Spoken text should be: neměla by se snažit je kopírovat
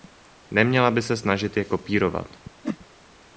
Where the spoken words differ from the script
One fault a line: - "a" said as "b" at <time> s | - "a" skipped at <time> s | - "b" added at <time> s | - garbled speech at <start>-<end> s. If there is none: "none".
none